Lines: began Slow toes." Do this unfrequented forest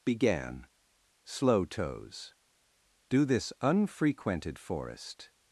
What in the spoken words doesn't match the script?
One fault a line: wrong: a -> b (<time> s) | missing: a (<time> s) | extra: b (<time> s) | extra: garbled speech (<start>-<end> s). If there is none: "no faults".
no faults